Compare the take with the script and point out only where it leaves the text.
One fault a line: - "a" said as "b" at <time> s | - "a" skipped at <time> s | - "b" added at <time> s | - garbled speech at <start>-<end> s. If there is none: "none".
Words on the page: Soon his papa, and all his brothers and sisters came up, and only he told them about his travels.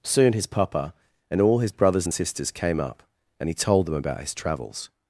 - "only" skipped at 3.5 s